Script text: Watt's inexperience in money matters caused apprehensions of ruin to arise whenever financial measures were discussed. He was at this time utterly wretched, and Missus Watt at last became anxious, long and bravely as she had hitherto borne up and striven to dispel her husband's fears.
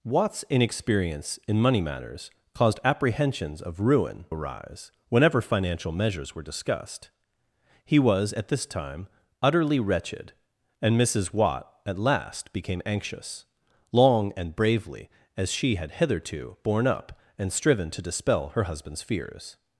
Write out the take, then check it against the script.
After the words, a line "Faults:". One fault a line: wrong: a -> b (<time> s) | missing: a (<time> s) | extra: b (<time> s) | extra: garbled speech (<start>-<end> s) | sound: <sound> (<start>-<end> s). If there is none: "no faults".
Watt's inexperience in money matters caused apprehensions of ruin arise whenever financial measures were discussed. He was at this time utterly wretched, and Missus Watt at last became anxious, long and bravely as she had hitherto borne up and striven to dispel her husband's fears.
Faults:
missing: to (4.2 s)